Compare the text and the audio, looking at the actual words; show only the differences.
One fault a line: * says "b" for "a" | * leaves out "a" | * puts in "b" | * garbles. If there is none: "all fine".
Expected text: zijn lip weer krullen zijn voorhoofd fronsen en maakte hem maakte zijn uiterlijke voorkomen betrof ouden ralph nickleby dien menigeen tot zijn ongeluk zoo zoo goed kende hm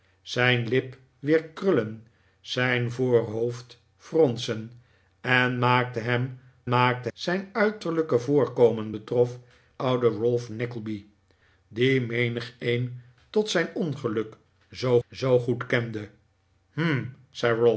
all fine